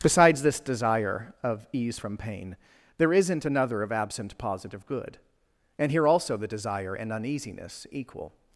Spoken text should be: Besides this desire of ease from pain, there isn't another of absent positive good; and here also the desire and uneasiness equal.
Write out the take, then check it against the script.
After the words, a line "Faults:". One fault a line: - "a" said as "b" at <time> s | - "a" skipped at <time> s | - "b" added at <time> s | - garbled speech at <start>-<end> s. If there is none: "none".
Besides this desire of ease from pain, there isn't another of absent positive good; and here also the desire and uneasiness equal.
Faults:
none